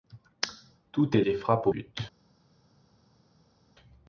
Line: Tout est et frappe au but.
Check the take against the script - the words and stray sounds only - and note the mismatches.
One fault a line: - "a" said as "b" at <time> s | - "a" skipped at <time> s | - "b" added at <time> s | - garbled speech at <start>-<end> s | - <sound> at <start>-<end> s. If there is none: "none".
none